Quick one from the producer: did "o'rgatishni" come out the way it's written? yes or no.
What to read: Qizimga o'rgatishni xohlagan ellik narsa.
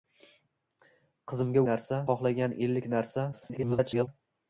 no